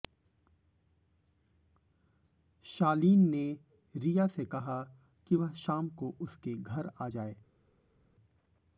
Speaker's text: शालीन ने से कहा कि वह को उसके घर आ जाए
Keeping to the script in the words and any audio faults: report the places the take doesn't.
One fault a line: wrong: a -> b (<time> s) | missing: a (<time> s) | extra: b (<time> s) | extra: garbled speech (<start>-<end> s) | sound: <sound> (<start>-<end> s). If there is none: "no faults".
extra: रिया (4.0 s)
extra: शाम (5.6 s)